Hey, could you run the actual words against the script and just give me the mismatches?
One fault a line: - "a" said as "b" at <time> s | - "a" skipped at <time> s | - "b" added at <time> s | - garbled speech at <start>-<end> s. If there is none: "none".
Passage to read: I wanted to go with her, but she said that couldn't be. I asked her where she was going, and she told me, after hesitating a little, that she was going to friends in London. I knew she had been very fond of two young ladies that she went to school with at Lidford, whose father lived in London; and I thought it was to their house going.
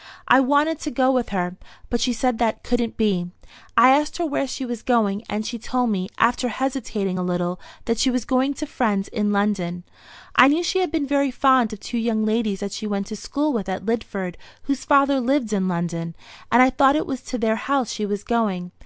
- "she was" added at 17.9 s